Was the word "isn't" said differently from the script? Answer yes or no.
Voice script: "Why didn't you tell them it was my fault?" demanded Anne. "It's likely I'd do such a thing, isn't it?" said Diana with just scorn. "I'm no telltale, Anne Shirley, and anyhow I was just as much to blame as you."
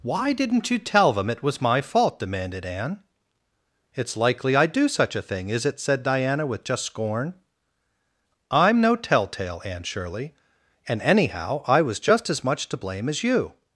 yes